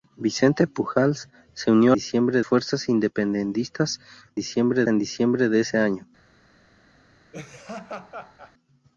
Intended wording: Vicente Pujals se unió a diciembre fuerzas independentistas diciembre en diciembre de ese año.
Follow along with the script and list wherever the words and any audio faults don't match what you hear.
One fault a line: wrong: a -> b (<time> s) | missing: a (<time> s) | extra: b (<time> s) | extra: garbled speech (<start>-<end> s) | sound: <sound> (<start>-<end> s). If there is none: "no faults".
sound: laugh (7.3-8.5 s)